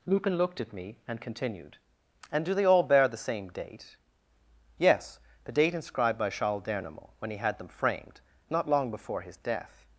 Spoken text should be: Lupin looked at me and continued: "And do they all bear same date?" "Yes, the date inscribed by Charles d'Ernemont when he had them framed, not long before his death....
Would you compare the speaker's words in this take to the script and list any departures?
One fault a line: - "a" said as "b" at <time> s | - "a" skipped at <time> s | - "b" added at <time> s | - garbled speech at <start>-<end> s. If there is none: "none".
- "the" added at 3.1 s